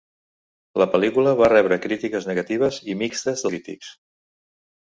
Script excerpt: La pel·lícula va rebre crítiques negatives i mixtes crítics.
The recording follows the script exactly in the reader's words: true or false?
true